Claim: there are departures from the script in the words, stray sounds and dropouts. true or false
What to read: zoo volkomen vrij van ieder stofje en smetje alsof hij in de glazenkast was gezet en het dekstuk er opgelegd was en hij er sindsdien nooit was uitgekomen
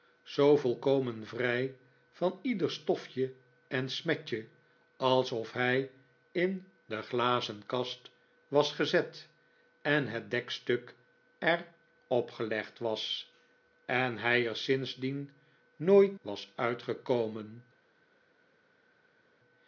false